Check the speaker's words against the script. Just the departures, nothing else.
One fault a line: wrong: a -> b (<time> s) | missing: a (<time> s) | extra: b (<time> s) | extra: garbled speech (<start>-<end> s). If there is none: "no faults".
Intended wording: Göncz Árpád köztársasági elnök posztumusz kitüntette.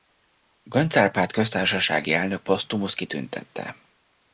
no faults